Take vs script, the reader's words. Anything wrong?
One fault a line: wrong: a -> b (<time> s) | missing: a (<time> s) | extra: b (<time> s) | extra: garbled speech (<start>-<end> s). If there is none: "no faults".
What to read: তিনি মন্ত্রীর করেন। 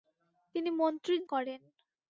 no faults